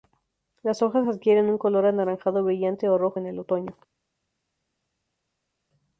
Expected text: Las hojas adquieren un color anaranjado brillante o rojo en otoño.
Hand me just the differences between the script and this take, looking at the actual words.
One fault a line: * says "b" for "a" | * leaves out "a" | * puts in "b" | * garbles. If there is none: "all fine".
* puts in "el"